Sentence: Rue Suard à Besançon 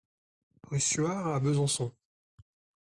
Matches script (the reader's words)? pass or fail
pass